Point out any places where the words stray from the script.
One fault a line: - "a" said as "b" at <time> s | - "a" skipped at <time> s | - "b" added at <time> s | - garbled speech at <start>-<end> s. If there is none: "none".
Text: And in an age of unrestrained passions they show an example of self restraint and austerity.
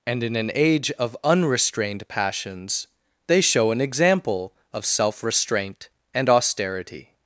none